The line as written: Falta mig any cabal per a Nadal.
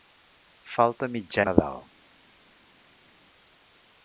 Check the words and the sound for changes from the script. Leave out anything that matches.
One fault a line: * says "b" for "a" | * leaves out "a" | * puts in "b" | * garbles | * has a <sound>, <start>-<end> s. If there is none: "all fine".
* leaves out "any cabal per"